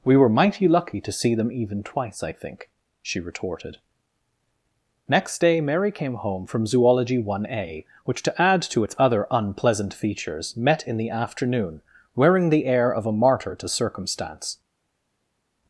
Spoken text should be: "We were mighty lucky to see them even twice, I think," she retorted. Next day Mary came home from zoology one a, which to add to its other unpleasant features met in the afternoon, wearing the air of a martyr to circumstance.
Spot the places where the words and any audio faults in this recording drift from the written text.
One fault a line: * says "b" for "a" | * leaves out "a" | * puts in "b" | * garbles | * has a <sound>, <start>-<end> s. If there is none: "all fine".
all fine